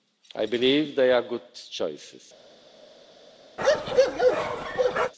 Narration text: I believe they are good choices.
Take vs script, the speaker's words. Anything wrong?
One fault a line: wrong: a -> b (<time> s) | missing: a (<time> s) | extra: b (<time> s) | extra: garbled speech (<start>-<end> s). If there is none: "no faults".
no faults